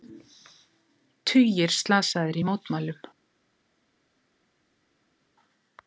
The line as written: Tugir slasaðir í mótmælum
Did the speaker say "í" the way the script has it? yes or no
yes